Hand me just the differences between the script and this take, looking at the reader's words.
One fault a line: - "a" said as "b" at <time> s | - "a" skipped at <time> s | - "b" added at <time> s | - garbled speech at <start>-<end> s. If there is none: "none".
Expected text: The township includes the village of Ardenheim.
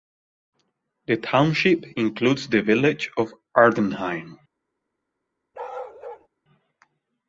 none